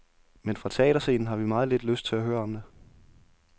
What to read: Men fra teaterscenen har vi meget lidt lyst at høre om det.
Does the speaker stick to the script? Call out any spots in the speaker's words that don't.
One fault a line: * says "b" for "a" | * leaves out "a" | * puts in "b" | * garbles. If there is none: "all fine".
* puts in "til"